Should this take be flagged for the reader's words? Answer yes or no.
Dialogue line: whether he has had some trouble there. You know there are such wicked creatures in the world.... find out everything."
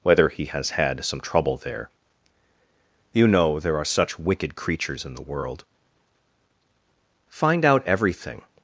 no